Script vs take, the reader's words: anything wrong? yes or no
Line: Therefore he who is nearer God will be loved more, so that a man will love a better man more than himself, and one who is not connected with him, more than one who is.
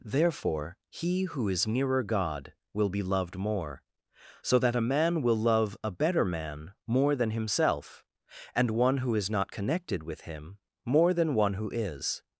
no